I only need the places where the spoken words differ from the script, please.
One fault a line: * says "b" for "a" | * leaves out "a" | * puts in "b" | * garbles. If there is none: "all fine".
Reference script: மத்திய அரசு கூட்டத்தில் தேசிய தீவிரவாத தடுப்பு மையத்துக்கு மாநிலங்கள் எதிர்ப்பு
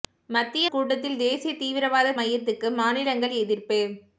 * leaves out "அரசு"
* leaves out "தடுப்பு"